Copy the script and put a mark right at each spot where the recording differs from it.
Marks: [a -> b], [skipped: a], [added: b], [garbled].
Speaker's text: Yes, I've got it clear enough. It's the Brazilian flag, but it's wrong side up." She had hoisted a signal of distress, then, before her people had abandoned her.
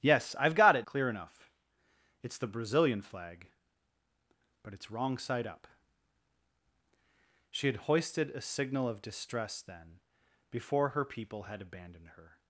Yes, I've got it clear enough. It's the Brazilian flag, but it's wrong side up." She had hoisted a signal of distress, then, before her people had abandoned her.